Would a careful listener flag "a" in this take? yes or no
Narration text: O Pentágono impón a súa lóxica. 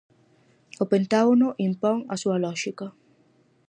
no